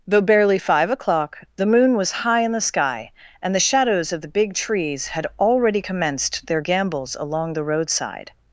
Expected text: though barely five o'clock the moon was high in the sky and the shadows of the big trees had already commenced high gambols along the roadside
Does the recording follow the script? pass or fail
fail